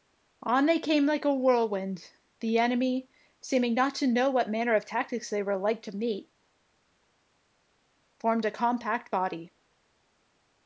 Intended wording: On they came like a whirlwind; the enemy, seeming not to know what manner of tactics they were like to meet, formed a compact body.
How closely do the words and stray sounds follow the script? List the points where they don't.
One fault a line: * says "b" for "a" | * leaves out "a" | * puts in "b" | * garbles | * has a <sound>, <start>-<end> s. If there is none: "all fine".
all fine